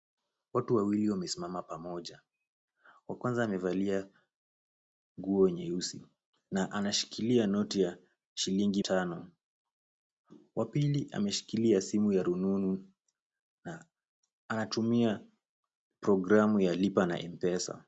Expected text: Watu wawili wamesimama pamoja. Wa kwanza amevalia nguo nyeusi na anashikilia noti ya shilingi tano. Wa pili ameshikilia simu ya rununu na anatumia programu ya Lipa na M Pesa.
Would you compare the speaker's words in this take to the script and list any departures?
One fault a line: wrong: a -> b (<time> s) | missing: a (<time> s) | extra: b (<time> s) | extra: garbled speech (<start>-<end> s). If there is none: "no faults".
no faults